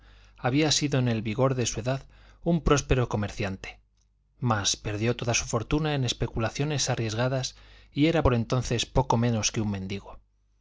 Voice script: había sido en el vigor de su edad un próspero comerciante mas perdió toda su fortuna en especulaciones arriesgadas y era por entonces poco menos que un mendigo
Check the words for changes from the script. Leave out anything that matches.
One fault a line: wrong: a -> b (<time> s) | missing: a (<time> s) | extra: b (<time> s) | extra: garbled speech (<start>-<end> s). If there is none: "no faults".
no faults